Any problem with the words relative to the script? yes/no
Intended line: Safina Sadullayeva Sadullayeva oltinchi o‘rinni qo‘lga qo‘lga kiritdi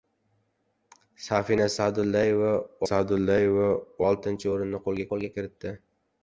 no